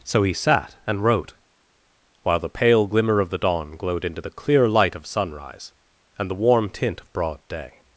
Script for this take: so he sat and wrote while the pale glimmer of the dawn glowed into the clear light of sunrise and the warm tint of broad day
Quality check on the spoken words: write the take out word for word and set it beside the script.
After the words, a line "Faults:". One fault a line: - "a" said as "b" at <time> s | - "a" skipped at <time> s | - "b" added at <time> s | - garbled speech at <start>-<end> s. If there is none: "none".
so he sat and wrote while the pale glimmer of the dawn glowed into the clear light of sunrise and the warm tint of broad day
Faults:
none